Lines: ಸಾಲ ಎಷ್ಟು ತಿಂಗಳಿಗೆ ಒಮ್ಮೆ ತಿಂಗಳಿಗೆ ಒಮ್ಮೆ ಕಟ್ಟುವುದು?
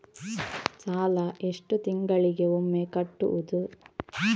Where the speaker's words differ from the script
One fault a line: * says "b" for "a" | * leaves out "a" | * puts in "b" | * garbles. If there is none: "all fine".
* leaves out "ತಿಂಗಳಿಗೆ ಒಮ್ಮೆ"